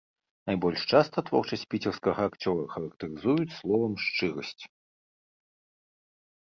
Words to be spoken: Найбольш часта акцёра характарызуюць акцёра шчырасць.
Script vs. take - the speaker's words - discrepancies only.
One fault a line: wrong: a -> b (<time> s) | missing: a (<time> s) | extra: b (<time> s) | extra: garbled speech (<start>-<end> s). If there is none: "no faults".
extra: творчасць піцерскага (1.3 s)
wrong: акцёра -> словам (3.6 s)